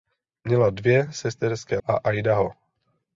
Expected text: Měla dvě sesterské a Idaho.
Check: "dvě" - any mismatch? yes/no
no